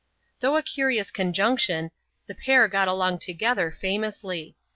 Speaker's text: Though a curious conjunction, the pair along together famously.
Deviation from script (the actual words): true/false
true